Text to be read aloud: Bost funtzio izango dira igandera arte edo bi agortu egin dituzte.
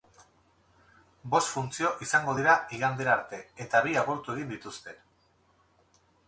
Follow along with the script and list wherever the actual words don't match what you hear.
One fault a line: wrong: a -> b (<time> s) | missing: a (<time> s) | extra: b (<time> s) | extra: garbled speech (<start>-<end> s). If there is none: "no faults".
wrong: edo -> eta (3.7 s)